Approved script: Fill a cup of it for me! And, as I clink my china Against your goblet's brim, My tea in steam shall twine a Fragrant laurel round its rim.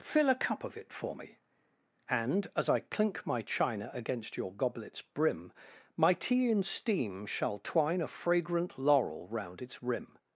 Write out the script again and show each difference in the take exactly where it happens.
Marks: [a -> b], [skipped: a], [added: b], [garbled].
Fill a cup of it for me! And, as I clink my china Against your goblet's brim, My tea in steam shall twine a Fragrant laurel round its rim.